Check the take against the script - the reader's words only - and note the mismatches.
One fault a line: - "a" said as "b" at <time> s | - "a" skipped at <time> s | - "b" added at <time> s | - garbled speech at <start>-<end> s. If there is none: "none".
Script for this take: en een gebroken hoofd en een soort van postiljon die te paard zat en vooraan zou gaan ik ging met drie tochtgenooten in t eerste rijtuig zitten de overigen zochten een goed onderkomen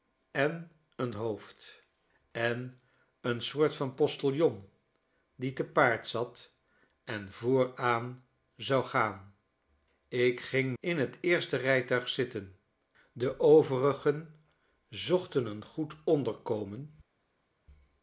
- "gebroken" skipped at 1.1 s
- "met drie tochtgenooten" skipped at 10.7 s